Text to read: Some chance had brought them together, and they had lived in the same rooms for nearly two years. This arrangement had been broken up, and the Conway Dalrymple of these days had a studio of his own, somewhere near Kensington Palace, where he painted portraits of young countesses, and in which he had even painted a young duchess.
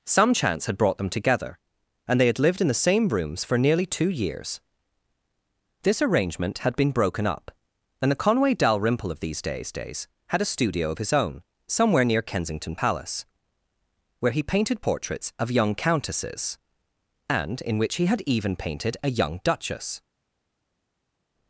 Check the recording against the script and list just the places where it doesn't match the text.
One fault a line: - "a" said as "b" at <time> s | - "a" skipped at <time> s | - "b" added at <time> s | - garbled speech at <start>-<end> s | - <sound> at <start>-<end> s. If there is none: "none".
- "days" added at 9.7 s